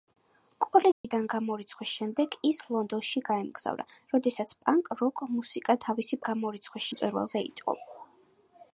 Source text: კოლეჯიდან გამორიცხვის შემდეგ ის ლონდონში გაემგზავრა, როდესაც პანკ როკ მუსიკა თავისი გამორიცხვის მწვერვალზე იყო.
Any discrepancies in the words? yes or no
no